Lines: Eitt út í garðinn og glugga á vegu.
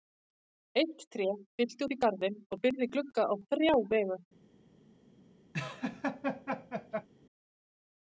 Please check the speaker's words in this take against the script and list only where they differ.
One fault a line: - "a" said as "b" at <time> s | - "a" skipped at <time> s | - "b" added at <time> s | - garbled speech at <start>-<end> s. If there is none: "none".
- "tré fyllti" added at 1.1 s
- "byrgði" added at 2.6 s
- "þrjá" added at 3.5 s